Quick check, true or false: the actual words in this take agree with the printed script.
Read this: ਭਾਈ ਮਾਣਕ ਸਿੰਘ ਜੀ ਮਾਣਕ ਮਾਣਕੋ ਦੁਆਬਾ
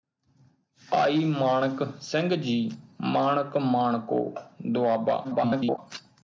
false